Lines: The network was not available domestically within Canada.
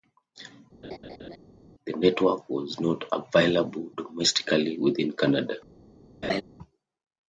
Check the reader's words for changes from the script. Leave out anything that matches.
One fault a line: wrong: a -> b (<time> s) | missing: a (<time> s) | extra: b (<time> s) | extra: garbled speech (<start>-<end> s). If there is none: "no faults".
no faults